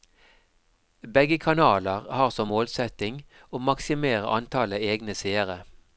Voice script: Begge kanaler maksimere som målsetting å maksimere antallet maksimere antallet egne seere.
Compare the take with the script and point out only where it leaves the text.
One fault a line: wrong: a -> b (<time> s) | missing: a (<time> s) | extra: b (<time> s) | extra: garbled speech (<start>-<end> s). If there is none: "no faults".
wrong: maksimere -> har (2.2 s)
missing: maksimere antallet (4.9 s)